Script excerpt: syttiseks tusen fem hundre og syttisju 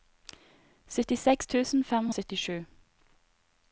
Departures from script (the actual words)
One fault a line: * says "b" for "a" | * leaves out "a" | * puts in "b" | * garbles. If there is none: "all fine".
* leaves out "hundre"